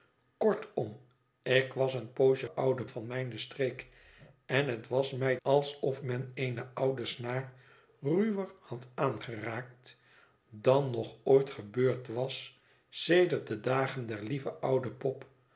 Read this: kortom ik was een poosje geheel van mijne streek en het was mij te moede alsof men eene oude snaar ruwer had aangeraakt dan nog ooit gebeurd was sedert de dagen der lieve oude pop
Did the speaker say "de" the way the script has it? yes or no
yes